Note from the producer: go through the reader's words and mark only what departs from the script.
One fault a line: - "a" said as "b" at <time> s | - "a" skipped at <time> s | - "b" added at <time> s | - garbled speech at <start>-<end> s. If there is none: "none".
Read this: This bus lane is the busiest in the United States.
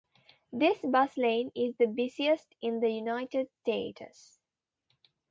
none